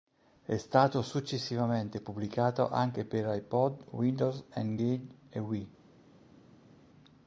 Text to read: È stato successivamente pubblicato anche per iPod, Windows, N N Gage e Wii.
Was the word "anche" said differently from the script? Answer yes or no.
no